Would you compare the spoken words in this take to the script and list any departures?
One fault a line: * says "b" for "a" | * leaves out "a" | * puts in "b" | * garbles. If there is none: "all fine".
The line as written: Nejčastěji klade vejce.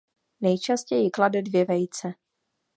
* puts in "dvě"